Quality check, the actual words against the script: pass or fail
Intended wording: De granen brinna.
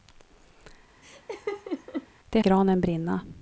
pass